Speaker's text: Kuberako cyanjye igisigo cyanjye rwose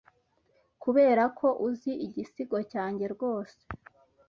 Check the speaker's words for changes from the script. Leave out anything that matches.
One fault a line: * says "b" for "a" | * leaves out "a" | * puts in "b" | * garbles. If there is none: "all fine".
* says "uzi" for "cyanjye"